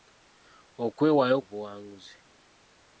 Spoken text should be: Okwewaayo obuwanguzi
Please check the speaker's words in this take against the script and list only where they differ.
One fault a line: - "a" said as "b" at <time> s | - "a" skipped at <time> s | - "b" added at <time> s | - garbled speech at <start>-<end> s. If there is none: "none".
none